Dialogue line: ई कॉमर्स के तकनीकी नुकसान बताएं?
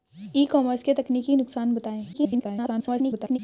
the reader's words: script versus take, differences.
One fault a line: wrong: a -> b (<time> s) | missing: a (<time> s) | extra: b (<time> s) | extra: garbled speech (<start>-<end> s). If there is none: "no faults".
extra: garbled speech (2.1-3.4 s)